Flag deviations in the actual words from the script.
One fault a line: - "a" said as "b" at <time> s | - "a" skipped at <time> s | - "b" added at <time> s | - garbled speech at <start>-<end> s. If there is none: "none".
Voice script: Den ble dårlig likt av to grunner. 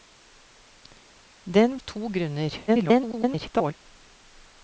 - "ble dårlig likt" skipped at 1.8 s
- garbled speech at 2.7-3.7 s